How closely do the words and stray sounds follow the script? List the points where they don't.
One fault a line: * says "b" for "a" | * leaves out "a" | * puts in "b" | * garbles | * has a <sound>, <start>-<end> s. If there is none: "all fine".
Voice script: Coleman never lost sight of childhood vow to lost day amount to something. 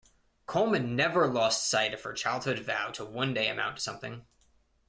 * puts in "her"
* says "one" for "lost"